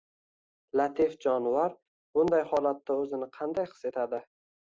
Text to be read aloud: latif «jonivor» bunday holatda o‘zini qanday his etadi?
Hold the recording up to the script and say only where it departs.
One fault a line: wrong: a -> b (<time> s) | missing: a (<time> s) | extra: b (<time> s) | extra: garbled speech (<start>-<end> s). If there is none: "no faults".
no faults